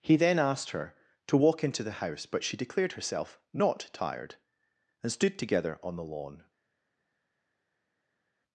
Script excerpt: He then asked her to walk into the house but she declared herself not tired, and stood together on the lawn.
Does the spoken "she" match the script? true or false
true